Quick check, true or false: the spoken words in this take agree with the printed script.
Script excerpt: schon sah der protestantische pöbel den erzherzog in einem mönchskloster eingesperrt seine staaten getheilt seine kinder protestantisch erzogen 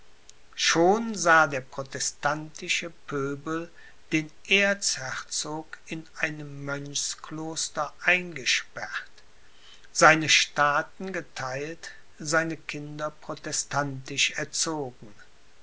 true